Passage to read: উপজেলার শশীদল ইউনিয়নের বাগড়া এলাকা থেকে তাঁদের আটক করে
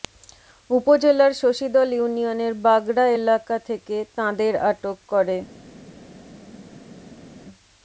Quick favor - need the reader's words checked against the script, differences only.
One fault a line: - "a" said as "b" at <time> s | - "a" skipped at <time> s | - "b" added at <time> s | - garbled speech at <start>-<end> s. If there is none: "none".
none